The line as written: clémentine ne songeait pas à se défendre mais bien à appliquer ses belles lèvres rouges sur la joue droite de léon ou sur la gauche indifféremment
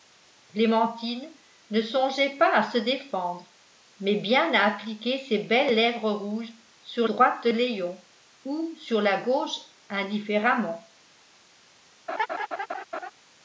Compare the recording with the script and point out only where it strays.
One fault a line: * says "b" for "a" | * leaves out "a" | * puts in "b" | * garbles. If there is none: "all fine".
* leaves out "la joue"